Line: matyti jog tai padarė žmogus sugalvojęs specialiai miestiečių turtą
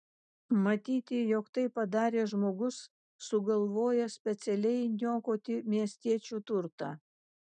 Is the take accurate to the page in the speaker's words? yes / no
no